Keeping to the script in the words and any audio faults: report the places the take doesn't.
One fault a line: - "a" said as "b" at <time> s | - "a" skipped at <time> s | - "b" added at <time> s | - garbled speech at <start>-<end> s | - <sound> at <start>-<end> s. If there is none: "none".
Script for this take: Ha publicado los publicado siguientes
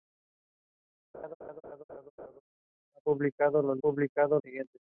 - laugh at 1.1-2.4 s